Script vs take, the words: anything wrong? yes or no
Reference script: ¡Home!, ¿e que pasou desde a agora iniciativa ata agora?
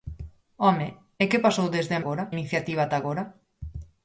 no